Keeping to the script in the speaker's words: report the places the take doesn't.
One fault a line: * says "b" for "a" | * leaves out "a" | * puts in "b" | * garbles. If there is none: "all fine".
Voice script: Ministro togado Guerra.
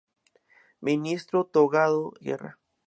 all fine